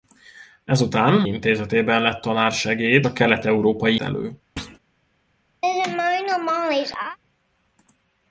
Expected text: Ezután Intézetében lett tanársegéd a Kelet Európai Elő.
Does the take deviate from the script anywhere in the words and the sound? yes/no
yes